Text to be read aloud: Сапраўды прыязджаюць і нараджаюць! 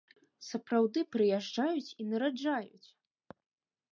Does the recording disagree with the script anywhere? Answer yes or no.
no